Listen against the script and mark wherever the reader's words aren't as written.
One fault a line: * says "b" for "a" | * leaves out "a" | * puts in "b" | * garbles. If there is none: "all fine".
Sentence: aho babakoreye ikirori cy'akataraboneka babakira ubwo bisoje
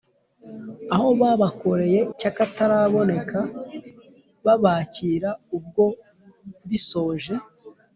* leaves out "ikirori"